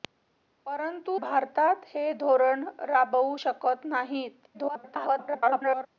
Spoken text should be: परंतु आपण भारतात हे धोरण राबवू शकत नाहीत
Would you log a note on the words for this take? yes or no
yes